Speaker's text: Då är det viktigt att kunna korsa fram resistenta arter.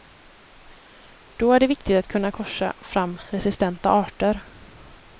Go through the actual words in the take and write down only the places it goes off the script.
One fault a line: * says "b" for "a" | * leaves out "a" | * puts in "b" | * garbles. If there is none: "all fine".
all fine